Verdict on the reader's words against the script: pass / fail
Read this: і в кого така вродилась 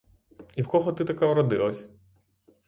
fail